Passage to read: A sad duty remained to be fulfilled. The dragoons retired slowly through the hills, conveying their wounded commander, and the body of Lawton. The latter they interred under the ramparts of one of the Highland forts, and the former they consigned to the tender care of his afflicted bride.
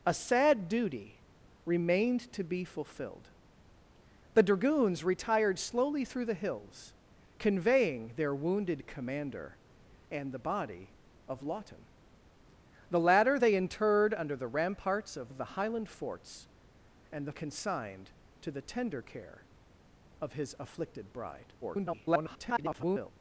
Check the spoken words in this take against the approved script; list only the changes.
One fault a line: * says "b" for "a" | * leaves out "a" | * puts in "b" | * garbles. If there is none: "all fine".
* leaves out "one"
* leaves out "former they"
* garbles